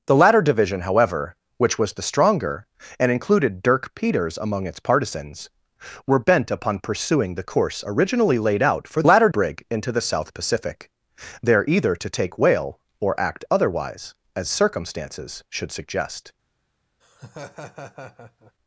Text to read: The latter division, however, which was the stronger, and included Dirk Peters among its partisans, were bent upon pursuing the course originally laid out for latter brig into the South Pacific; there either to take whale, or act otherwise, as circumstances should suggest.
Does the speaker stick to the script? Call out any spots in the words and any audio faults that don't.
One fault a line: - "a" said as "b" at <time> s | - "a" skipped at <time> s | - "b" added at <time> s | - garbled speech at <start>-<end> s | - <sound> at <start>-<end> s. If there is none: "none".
- laugh at 17.0-18.5 s